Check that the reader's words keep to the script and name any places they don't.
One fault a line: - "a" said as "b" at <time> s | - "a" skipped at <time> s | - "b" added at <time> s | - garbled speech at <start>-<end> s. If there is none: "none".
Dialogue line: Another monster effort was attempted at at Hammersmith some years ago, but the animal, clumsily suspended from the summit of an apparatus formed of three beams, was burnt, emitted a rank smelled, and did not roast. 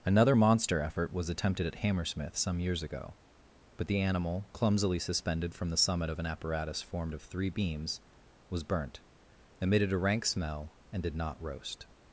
- "at" skipped at 1.8 s
- "smelled" said as "smell" at 10.2 s